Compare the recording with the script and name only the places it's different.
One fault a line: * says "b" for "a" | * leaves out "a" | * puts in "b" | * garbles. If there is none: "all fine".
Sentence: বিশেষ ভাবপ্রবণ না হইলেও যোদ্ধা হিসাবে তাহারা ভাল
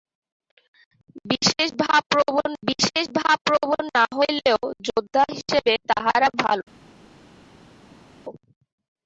* puts in "বিশেষ ভাবপ্রবণ"